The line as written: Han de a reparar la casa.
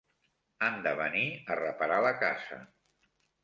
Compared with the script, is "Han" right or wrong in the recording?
right